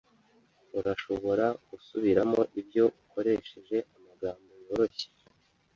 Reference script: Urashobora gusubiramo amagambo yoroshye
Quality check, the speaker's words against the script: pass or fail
fail